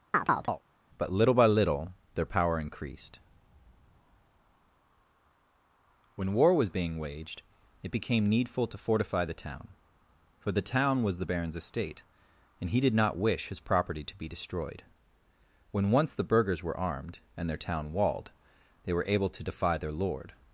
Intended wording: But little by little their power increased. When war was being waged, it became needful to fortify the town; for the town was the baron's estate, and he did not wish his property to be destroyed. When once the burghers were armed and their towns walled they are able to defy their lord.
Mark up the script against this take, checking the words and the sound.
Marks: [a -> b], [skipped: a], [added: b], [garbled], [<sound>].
[chirp] But little by little their power increased. When war was being waged, it became needful to fortify the town; for the town was the baron's estate, and he did not wish his property to be destroyed. When once the burghers were armed and their [towns -> town] walled they [are -> were] able to defy their lord.